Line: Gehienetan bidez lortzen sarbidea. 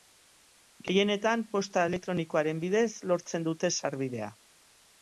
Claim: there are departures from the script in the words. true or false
true